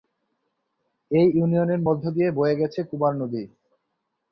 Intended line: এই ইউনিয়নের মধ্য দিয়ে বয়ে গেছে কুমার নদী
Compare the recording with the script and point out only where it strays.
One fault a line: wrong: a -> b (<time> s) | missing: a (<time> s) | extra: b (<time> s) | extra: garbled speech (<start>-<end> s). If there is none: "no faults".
no faults